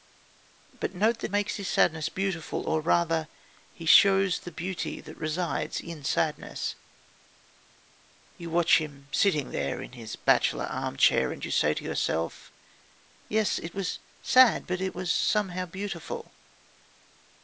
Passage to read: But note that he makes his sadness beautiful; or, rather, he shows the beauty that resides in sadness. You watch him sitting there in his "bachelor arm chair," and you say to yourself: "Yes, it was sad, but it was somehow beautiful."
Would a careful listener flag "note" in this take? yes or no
no